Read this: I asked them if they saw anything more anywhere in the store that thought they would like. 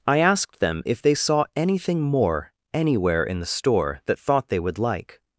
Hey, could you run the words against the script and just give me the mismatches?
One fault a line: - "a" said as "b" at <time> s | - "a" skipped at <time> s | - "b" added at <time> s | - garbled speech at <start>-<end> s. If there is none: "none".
none